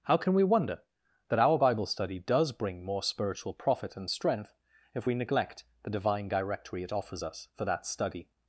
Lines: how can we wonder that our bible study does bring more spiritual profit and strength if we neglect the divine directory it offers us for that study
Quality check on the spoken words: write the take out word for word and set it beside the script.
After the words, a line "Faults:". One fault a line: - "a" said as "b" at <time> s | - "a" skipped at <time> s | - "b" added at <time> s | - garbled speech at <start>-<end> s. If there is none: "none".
how can we wonder that our bible study does bring more spiritual profit and strength if we neglect the divine directory it offers us for that study
Faults:
none